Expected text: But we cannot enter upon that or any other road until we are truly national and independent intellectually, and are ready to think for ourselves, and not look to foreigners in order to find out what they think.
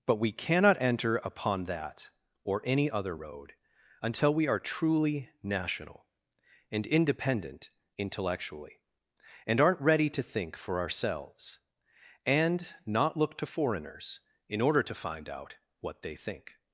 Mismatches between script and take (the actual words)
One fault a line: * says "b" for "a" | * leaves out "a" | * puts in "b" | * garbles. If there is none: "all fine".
* says "aren't" for "are"